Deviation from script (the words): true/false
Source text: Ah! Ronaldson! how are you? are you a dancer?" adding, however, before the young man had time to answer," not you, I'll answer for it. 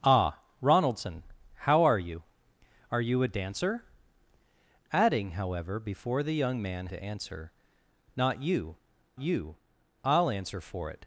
true